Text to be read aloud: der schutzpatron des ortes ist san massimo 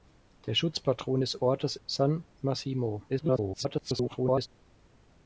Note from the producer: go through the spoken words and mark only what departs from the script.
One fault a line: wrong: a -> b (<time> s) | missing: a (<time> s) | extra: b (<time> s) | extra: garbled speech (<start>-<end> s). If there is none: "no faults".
missing: ist (1.8 s)
extra: garbled speech (3.1-4.5 s)